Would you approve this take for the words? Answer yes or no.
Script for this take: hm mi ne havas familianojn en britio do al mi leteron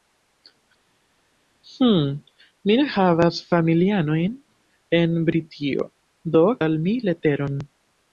yes